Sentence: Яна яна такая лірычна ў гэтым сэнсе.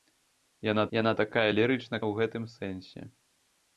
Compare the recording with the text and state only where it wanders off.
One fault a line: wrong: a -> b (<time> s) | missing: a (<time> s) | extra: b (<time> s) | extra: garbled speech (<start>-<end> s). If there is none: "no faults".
no faults